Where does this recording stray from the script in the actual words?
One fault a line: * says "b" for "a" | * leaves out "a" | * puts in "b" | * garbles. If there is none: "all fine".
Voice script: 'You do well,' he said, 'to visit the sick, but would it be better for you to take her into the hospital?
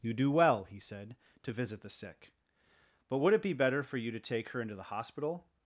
all fine